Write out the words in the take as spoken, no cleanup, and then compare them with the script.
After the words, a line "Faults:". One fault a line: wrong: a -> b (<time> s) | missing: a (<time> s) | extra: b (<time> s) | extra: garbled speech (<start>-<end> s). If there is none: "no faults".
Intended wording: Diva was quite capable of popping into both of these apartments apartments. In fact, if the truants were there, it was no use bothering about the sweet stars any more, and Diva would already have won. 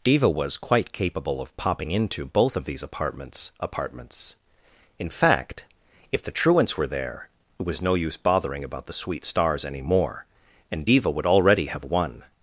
Diva was quite capable of popping into both of these apartments apartments. In fact, if the truants were there, it was no use bothering about the sweet stars any more, and Diva would already have won.
Faults:
no faults